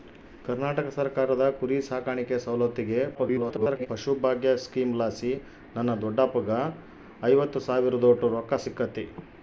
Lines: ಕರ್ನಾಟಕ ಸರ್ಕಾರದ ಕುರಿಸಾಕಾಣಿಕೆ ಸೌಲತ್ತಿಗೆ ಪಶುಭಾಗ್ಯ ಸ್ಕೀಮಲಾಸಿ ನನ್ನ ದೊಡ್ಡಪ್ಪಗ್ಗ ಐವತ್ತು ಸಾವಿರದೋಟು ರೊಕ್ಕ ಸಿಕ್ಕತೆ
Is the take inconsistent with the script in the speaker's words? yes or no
yes